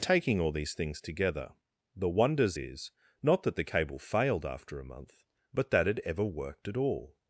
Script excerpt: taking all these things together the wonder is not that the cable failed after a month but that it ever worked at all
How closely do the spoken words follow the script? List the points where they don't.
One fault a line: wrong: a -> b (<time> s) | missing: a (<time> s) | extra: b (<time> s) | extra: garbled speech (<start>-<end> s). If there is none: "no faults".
wrong: wonder -> wonders (2.1 s)